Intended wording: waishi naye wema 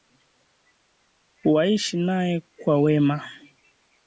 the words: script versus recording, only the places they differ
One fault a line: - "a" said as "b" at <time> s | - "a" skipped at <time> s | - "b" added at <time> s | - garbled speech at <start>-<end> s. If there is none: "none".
- "kwa" added at 2.4 s